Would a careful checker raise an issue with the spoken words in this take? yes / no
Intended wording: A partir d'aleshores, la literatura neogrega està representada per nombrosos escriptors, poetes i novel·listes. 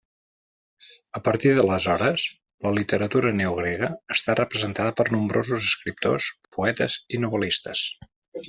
no